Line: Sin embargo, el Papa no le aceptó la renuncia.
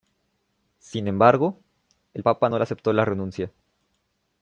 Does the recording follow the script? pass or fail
pass